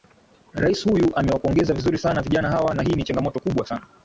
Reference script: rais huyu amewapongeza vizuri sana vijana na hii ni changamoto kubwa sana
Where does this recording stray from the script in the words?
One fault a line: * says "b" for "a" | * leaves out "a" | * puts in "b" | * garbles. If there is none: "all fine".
* puts in "hawa"